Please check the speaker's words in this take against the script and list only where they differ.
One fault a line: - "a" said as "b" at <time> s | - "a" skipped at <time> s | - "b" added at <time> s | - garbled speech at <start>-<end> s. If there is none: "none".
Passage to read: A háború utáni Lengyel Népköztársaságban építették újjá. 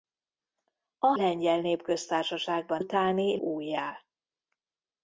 - "háború utáni" skipped at 1.1 s
- "építették" said as "utáni" at 2.8 s